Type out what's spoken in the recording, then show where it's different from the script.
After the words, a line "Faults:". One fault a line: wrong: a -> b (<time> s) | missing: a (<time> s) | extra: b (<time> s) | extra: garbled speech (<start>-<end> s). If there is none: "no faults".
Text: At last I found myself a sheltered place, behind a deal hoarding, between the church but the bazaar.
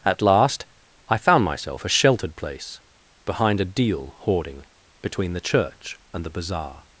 At last I found myself a sheltered place, behind a deal hoarding, between the church and the bazaar.
Faults:
wrong: but -> and (6.1 s)